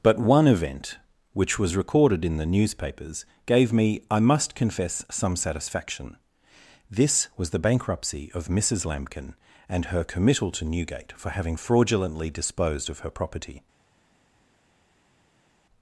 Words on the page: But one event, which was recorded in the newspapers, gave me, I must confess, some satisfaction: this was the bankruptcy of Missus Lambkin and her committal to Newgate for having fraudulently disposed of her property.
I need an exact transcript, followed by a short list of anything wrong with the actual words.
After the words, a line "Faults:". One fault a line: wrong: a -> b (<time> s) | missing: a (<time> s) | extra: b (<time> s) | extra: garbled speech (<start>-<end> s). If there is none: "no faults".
But one event, which was recorded in the newspapers, gave me, I must confess, some satisfaction: this was the bankruptcy of Missus Lambkin and her committal to Newgate for having fraudulently disposed of her property.
Faults:
no faults